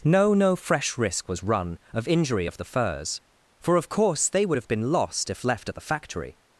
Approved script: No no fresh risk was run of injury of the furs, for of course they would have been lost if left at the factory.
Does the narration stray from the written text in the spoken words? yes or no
no